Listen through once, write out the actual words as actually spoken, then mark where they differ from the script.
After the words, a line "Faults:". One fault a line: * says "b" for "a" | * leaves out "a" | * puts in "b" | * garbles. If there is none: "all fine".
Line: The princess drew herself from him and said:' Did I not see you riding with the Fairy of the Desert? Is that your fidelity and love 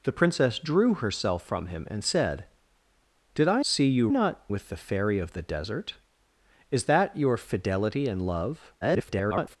The princess drew herself from him and said:' Did I see you not with the Fairy of the Desert? Is that your fidelity and love [garbled]
Faults:
* leaves out "not"
* says "not" for "riding"
* garbles